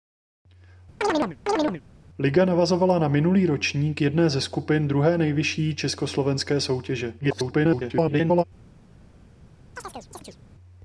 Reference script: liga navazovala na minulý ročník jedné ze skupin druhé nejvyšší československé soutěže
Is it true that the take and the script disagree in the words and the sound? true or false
true